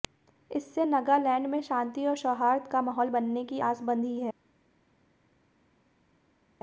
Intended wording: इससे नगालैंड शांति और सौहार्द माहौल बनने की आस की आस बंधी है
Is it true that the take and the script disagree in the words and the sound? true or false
true